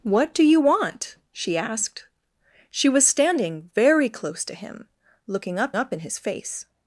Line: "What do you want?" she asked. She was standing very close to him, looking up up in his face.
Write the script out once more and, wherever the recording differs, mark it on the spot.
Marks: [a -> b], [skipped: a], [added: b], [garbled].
"What do you want?" she asked. She was standing very close to him, looking up up in his face.